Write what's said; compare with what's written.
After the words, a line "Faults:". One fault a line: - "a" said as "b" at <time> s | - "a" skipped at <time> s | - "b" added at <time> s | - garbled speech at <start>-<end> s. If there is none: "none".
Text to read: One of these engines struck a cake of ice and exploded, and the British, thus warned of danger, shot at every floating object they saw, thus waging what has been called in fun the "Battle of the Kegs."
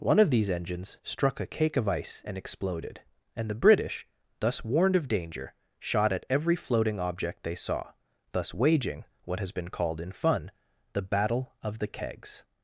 One of these engines struck a cake of ice and exploded, and the British, thus warned of danger, shot at every floating object they saw, thus waging what has been called in fun the "Battle of the Kegs."
Faults:
none